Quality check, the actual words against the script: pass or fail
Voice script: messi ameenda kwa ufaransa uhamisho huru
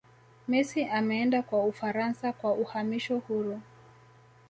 fail